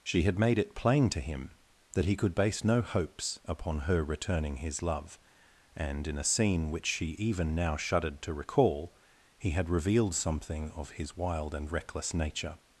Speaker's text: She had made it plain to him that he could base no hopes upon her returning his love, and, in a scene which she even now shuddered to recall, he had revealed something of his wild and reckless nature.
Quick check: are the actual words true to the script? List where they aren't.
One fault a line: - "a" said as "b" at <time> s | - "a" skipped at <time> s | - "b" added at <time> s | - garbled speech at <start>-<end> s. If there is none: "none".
none